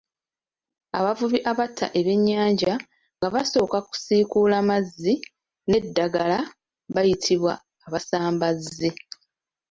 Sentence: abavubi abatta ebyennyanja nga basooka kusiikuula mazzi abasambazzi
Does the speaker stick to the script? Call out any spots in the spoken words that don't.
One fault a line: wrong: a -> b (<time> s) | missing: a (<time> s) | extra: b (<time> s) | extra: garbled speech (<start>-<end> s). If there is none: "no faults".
extra: n'eddagala bayitibwa (5.7 s)